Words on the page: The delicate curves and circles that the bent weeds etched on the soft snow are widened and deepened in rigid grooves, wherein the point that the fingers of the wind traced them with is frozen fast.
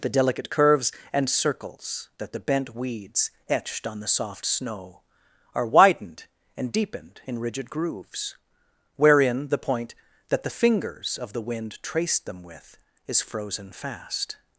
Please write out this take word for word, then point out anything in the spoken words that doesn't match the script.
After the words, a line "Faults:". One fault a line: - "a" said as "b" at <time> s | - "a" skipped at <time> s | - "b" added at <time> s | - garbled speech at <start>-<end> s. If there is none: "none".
The delicate curves and circles that the bent weeds etched on the soft snow are widened and deepened in rigid grooves, wherein the point that the fingers of the wind traced them with is frozen fast.
Faults:
none